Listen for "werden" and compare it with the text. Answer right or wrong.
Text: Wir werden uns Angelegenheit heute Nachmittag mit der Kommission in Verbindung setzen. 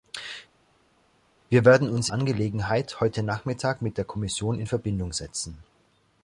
right